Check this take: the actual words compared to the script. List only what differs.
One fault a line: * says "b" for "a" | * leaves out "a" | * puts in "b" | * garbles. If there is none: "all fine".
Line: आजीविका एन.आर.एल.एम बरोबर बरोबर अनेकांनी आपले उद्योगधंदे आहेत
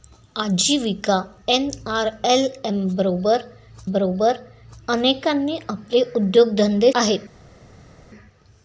all fine